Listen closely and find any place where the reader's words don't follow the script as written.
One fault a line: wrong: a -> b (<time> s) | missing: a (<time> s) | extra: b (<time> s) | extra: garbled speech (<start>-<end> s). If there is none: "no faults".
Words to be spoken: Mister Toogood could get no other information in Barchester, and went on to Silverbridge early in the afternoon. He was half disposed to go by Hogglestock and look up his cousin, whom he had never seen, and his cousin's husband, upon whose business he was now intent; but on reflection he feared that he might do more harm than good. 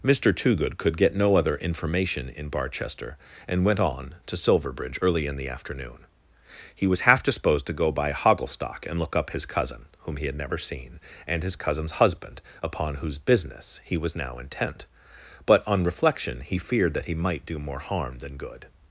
no faults